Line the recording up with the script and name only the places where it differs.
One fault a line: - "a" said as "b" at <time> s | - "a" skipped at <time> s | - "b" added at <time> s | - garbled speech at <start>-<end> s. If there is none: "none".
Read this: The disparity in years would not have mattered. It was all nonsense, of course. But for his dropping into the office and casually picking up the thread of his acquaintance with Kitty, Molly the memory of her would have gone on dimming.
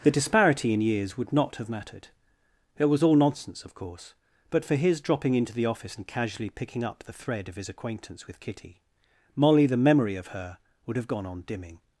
none